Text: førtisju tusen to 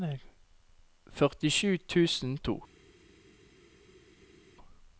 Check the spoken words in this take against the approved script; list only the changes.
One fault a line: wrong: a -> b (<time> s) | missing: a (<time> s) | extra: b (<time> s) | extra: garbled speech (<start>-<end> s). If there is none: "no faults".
no faults